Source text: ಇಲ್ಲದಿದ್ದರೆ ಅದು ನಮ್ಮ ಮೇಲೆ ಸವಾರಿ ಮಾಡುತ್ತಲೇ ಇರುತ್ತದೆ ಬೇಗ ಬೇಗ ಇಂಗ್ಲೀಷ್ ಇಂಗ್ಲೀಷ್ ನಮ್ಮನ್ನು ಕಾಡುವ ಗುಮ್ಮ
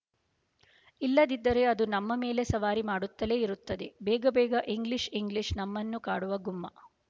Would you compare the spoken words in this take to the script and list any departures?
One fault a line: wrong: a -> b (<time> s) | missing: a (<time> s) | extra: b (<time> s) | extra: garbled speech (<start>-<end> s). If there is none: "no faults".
no faults